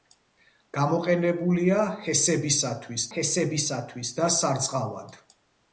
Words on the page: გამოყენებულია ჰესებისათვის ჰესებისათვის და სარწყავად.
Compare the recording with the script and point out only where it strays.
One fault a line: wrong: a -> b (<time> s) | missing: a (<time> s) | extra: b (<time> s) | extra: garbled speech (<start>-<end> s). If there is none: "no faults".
no faults